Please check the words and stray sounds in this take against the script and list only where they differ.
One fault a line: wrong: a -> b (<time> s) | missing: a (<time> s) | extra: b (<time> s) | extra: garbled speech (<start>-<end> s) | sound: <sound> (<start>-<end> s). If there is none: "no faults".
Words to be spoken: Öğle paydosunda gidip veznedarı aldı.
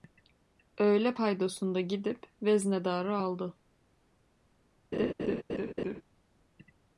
sound: laugh (4.9-6.0 s)